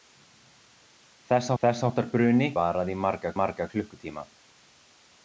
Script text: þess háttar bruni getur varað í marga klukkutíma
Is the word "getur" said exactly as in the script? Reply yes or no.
no